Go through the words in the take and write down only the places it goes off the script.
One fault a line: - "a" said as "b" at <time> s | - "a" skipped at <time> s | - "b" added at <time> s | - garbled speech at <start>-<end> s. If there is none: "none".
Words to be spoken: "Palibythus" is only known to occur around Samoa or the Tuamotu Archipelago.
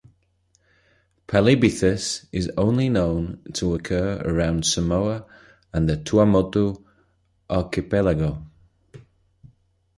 - "or" said as "and" at 5.7 s